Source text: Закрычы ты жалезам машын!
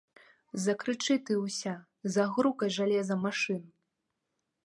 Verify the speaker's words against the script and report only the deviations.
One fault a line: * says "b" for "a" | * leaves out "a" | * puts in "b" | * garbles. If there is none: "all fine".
* puts in "ўся загрукай"